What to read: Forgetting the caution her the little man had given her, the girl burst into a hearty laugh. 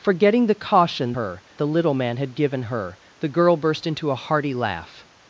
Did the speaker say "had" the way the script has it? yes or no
yes